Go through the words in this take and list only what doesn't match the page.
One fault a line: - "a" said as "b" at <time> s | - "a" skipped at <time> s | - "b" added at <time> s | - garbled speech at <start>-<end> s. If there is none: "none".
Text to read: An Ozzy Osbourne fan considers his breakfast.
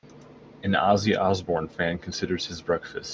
none